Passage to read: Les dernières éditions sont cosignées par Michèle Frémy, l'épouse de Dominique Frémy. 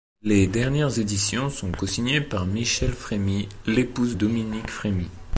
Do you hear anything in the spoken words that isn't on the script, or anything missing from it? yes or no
yes